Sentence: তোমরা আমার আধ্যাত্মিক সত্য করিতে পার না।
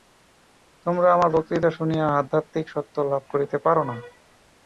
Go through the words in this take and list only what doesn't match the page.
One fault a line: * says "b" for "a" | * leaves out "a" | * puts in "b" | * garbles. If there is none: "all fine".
* puts in "বক্তৃতা শুনিয়া"
* puts in "লাভ"